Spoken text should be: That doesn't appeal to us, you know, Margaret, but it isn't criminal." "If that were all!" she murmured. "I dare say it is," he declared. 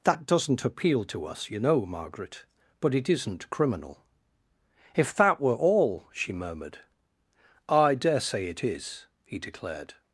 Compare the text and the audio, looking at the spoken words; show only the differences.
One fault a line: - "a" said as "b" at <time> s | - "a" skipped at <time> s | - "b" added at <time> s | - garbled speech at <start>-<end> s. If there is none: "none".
none